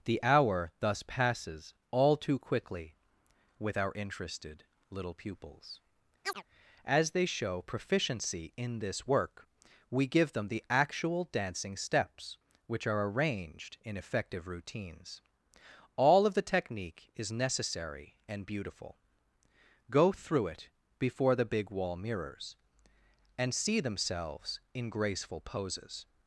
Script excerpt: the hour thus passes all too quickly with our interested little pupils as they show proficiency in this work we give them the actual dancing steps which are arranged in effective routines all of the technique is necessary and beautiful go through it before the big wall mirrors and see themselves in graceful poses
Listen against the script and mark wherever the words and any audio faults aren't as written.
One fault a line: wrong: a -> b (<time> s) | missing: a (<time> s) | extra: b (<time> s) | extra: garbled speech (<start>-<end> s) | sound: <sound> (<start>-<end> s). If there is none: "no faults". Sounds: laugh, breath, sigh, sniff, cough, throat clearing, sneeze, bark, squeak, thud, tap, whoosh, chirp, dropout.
sound: chirp (6.2-6.4 s)